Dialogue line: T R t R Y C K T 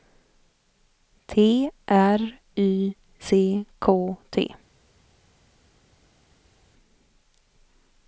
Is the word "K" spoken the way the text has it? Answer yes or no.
yes